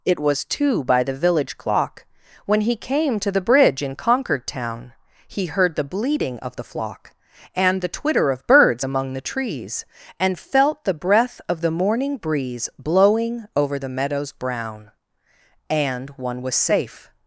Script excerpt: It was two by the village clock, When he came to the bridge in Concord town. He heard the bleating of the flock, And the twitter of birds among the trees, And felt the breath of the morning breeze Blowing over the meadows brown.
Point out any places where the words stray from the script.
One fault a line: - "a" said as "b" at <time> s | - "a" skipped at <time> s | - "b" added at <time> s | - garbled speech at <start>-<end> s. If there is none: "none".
- "And one was safe" added at 15.7 s